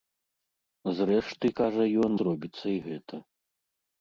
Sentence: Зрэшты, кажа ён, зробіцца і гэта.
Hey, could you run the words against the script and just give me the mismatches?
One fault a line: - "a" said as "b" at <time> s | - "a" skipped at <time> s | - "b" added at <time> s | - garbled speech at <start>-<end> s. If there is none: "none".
none